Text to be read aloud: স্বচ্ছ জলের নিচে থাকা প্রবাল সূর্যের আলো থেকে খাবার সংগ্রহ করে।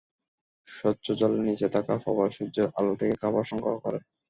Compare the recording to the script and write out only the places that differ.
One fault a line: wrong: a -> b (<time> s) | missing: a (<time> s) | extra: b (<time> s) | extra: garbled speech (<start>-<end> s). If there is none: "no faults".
no faults